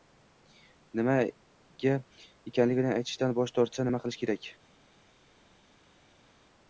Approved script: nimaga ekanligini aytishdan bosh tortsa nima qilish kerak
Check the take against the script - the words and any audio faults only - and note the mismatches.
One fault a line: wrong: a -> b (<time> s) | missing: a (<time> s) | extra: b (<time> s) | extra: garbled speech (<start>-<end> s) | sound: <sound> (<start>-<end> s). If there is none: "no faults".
no faults